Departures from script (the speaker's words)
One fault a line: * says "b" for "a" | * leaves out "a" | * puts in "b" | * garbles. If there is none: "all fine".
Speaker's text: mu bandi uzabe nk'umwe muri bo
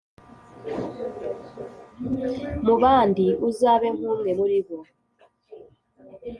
all fine